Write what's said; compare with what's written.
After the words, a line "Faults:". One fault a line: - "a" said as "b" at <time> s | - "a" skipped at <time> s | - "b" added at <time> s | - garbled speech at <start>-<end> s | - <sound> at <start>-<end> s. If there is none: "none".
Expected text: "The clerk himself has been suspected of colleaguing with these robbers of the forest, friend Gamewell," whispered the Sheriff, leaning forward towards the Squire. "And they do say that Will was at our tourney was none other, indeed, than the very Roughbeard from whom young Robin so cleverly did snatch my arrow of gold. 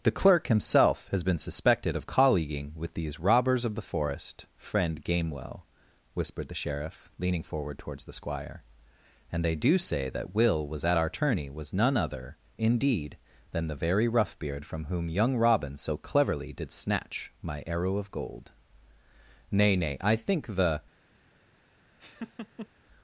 "The clerk himself has been suspected of colleaguing with these robbers of the forest, friend Gamewell," whispered the Sheriff, leaning forward towards the Squire. "And they do say that Will was at our tourney was none other, indeed, than the very Roughbeard from whom young Robin so cleverly did snatch my arrow of gold. Nay, nay, I think the
Faults:
- "Nay nay I think the" added at 19.5 s
- laugh at 22.0-22.7 s